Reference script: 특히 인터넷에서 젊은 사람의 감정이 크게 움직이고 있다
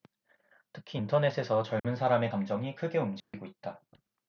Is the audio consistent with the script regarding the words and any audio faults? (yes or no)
no